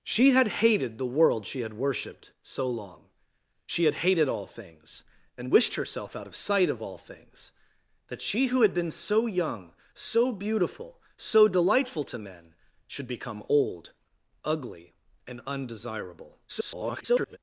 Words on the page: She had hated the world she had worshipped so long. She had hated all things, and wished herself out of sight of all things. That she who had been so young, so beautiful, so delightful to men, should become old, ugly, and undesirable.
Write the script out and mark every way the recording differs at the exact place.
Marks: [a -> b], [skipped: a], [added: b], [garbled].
She had hated the world she had worshipped so long. She had hated all things, and wished herself out of sight of all things. That she who had been so young, so beautiful, so delightful to men, should become old, ugly, and undesirable. [garbled]